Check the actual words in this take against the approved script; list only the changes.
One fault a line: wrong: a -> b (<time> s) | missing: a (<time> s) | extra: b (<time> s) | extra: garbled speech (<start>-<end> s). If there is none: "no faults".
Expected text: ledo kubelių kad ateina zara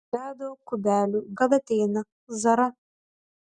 no faults